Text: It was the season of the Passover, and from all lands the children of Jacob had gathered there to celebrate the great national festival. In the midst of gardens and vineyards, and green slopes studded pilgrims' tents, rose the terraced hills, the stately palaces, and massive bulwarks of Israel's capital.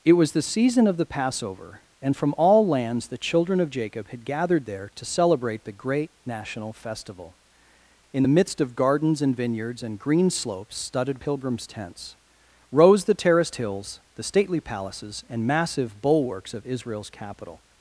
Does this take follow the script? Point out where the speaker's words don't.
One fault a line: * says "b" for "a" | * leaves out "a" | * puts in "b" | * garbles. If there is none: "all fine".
all fine